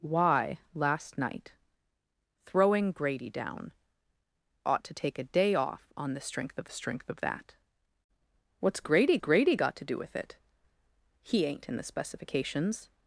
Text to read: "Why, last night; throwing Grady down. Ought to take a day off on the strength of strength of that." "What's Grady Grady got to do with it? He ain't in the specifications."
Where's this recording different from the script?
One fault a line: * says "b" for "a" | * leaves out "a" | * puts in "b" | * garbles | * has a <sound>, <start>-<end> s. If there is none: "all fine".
all fine